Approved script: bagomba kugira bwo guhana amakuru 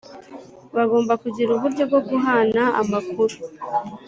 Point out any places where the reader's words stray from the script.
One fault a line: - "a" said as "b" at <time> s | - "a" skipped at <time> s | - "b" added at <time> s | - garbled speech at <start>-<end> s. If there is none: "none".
- "uburyo" added at 1.5 s